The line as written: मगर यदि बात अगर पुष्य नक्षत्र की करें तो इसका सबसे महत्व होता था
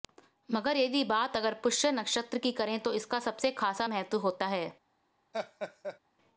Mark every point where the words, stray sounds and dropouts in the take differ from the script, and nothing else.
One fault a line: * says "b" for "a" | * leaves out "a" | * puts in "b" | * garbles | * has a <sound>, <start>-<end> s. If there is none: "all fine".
* puts in "खासा"
* says "है" for "था"
* has a laugh, 5.3-6.0 s